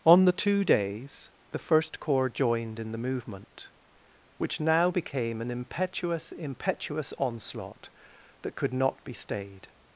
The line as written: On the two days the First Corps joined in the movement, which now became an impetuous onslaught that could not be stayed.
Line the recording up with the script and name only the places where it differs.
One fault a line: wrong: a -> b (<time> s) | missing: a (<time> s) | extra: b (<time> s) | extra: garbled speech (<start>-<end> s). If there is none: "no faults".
extra: impetuous (6.3 s)